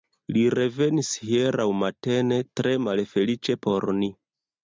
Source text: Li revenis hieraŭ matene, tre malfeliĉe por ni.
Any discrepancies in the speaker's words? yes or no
no